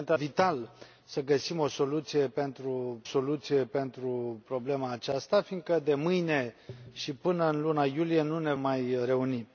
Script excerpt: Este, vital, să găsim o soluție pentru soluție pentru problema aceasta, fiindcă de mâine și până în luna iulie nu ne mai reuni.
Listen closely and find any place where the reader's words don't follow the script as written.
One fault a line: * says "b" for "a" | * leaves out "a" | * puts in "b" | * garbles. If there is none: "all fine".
all fine